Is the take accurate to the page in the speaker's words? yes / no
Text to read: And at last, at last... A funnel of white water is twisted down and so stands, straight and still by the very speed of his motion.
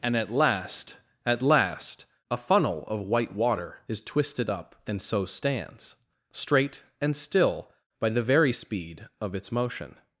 no